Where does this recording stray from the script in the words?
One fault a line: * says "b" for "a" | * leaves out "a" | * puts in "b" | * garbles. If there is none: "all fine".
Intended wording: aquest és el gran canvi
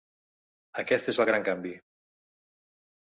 all fine